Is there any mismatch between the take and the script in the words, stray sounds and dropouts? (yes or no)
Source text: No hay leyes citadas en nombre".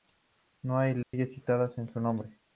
yes